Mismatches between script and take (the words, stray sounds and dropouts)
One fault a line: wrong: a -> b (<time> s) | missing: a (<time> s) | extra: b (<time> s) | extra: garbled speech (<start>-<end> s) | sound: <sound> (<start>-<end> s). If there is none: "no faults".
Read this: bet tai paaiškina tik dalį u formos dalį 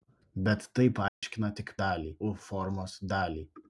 sound: dropout (1.1-1.2 s)